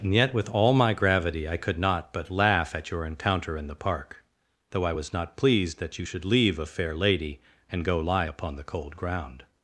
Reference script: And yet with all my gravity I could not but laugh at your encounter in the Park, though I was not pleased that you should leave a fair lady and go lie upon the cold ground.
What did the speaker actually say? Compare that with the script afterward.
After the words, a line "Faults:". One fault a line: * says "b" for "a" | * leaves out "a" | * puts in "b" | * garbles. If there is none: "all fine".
And yet with all my gravity I could not but laugh at your encounter in the Park, though I was not pleased that you should leave a fair lady and go lie upon the cold ground.
Faults:
all fine